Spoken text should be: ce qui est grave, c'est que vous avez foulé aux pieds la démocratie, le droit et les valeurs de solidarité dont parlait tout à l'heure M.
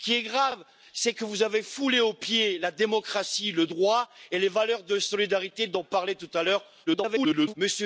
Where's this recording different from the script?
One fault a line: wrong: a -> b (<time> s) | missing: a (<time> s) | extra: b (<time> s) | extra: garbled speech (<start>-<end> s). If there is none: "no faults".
extra: garbled speech (6.9-7.5 s)